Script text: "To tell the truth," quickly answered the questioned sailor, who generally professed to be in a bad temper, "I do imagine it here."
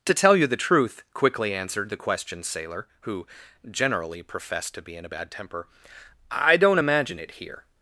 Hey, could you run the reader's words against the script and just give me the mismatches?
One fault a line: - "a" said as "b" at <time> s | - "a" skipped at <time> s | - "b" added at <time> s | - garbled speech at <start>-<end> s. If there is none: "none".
- "you" added at 0.3 s
- "do" said as "don't" at 6.6 s